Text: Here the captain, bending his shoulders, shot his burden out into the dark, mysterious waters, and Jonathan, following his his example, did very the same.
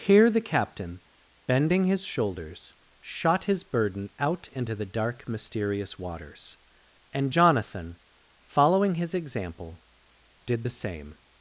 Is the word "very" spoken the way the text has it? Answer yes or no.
no